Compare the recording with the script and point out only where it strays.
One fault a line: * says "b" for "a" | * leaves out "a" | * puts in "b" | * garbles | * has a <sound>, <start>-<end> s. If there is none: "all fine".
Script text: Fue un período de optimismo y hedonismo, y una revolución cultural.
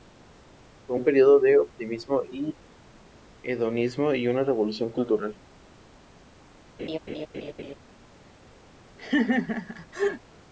* has a laugh, 6.8-7.7 s
* has a laugh, 9.0-10.2 s